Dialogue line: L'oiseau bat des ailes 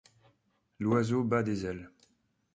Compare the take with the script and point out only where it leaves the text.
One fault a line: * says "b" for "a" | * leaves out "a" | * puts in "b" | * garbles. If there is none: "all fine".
all fine